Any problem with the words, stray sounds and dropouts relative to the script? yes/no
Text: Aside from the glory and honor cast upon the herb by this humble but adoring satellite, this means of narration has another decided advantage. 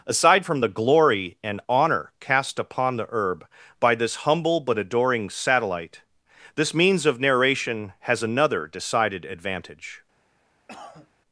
yes